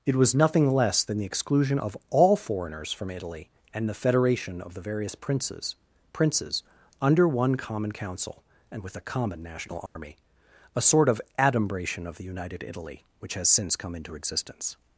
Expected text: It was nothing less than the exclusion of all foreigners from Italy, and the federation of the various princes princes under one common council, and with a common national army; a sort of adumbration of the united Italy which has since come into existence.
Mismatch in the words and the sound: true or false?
true